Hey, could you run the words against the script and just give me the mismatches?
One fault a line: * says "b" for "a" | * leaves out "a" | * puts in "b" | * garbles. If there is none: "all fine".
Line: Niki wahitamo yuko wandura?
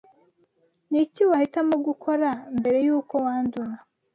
* puts in "gukora mbere"